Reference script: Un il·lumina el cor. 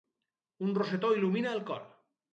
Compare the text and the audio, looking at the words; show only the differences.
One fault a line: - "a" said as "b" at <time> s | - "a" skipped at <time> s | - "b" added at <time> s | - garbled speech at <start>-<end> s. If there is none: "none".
- "rosetó" added at 0.8 s